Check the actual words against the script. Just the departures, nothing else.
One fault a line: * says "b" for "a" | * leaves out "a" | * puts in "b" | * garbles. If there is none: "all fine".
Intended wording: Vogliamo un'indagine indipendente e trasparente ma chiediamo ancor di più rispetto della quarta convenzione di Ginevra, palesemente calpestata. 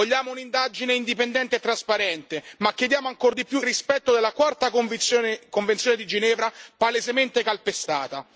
all fine